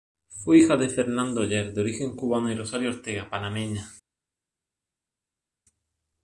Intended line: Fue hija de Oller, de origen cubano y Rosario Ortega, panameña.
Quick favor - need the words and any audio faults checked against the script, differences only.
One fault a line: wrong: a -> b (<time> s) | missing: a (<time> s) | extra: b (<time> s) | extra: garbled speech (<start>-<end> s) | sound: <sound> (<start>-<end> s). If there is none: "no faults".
extra: Fernando (0.9 s)